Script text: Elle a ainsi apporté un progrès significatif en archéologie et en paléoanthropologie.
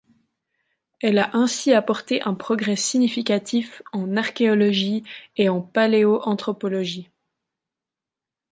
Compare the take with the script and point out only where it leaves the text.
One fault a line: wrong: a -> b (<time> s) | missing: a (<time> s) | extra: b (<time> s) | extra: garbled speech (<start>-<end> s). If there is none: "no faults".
no faults